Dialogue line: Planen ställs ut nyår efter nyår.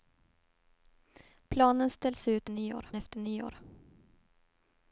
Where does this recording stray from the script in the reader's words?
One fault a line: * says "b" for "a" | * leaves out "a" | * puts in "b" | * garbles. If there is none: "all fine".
all fine